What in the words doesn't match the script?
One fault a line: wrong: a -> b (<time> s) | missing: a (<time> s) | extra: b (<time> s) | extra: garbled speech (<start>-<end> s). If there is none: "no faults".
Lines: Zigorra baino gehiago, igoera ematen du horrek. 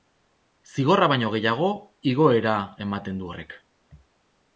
no faults